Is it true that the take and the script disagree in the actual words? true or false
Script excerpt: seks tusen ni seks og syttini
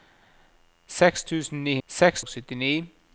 false